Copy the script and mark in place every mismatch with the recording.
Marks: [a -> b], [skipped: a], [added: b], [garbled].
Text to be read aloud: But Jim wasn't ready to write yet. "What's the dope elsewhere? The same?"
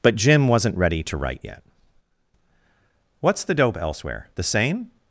But Jim wasn't ready to write yet. "What's the dope elsewhere? The same?"